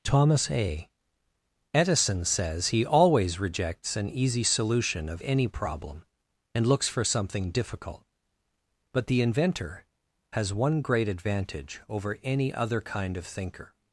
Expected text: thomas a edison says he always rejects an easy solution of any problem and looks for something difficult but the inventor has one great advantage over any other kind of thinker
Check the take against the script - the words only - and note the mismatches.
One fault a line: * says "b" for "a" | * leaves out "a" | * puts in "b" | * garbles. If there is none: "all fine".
all fine